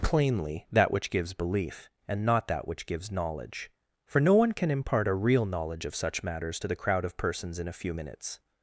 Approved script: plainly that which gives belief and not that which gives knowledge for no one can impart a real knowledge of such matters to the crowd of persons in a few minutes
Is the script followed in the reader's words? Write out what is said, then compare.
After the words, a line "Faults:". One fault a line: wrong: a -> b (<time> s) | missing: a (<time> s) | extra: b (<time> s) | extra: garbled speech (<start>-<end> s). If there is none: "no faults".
plainly that which gives belief and not that which gives knowledge for no one can impart a real knowledge of such matters to the crowd of persons in a few minutes
Faults:
no faults